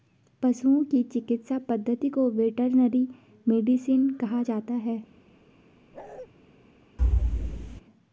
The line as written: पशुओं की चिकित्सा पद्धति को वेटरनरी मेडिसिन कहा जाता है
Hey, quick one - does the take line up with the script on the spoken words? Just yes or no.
yes